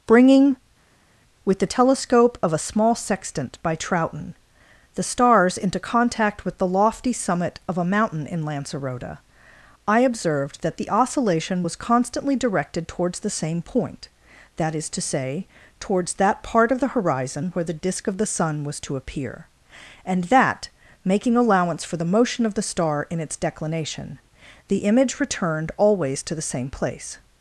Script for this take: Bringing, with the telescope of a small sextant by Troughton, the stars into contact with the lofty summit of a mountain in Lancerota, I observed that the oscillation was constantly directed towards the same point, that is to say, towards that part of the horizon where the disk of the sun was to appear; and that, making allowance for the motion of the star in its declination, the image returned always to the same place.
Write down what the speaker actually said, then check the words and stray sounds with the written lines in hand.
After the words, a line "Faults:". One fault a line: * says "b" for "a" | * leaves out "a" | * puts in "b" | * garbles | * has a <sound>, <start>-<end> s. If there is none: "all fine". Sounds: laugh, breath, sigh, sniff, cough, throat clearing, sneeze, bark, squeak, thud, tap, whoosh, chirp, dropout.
Bringing, with the telescope of a small sextant by Troughton, the stars into contact with the lofty summit of a mountain in Lancerota, I observed that the oscillation was constantly directed towards the same point, that is to say, towards that part of the horizon where the disk of the sun was to appear; and that, making allowance for the motion of the star in its declination, the image returned always to the same place.
Faults:
all fine